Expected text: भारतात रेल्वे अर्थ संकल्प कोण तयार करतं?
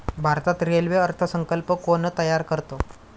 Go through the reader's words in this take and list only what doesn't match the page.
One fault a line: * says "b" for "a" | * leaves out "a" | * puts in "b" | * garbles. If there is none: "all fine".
all fine